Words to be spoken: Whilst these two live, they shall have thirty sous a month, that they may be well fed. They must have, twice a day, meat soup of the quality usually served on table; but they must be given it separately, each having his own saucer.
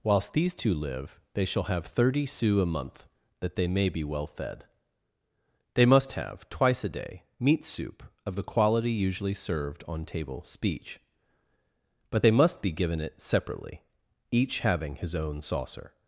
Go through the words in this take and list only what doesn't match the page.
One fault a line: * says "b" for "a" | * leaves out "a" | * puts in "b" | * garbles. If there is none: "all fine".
* puts in "speech"